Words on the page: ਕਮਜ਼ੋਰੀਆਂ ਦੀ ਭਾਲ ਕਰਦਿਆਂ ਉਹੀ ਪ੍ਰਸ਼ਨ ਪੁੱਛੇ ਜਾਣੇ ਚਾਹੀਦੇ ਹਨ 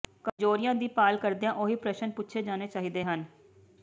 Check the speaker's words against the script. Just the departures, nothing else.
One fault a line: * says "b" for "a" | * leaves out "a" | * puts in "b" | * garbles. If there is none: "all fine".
all fine